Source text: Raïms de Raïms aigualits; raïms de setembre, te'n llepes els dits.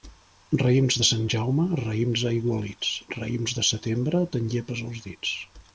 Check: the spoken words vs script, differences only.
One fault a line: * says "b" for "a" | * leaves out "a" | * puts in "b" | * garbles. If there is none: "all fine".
* puts in "Sant Jaume"